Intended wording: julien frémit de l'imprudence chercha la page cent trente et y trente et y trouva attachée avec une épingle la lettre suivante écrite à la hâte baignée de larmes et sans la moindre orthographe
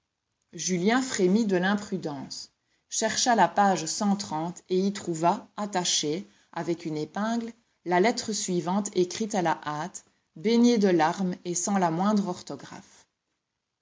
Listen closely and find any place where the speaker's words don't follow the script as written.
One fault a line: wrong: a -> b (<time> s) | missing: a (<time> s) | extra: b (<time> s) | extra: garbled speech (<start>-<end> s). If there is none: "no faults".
missing: trente et y (4.9 s)